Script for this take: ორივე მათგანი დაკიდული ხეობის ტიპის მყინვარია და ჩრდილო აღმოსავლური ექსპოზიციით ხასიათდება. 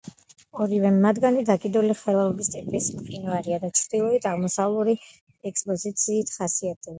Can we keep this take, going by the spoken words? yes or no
yes